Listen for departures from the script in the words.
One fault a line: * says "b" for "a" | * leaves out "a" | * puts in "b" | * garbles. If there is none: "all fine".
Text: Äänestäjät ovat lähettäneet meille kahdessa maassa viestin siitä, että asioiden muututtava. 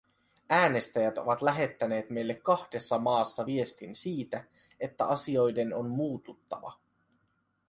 * puts in "on"